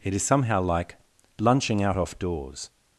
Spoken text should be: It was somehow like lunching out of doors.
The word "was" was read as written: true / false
false